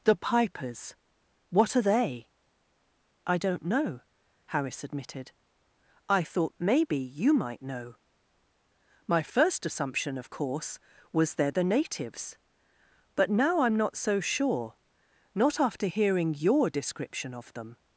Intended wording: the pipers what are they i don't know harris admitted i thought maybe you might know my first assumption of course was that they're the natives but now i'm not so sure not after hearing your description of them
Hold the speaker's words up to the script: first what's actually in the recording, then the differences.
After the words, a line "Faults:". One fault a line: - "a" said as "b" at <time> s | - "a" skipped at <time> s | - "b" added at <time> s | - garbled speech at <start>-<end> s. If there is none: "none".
the pipers what are they i don't know harris admitted i thought maybe you might know my first assumption of course was they're the natives but now i'm not so sure not after hearing your description of them
Faults:
- "that" skipped at 11.3 s